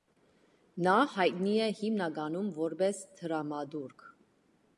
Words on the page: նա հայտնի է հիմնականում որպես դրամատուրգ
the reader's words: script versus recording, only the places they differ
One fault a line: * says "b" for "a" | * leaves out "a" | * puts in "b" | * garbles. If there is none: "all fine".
all fine